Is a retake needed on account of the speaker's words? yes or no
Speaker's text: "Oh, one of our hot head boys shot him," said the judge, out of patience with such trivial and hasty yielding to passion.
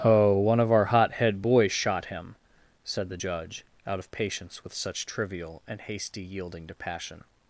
no